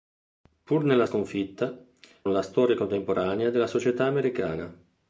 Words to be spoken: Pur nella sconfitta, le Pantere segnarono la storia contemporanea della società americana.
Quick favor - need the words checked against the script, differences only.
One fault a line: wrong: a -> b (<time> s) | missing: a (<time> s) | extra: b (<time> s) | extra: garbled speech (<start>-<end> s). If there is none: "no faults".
missing: le Pantere segnarono (1.8 s)